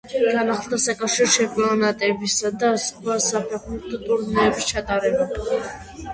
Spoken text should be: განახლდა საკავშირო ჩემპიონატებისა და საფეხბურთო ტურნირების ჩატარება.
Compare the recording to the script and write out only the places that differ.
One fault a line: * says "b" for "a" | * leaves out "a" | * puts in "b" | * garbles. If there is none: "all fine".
* puts in "სხვა"